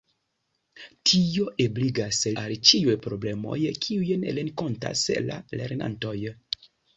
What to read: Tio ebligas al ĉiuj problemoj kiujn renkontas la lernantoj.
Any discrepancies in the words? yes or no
no